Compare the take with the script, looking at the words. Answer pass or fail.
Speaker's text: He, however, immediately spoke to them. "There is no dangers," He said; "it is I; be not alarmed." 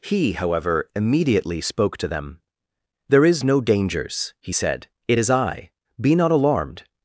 pass